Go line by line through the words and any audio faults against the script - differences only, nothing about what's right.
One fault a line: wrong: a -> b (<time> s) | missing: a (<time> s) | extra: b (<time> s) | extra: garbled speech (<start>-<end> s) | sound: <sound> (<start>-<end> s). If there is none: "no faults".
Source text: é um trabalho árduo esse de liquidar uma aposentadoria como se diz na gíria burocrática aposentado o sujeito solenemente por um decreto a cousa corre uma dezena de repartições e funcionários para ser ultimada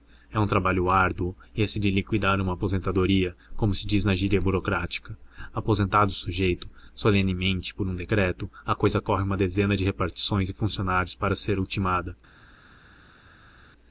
no faults